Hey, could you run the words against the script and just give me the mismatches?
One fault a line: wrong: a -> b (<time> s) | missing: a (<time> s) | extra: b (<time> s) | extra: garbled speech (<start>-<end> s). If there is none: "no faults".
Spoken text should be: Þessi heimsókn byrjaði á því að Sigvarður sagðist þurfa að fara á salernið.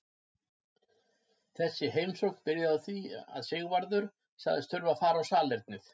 no faults